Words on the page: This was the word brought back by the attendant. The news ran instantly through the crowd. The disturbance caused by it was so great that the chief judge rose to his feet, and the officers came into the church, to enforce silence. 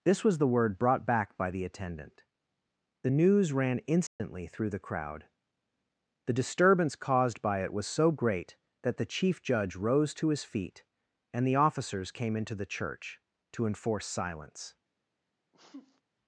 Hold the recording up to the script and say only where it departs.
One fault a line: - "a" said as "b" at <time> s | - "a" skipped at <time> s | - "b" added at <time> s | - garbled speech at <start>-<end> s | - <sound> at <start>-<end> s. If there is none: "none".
- dropout at 4.1-4.2 s
- sneeze at 15.5-16.0 s